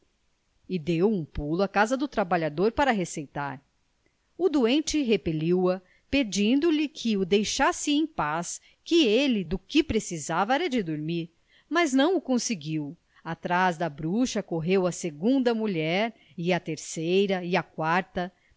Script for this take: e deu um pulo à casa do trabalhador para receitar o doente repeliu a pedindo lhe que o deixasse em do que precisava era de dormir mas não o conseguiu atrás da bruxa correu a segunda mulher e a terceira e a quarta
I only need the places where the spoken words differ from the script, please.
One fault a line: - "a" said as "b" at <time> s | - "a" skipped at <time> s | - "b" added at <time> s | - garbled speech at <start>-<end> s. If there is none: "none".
- "paz que ele" added at 8.1 s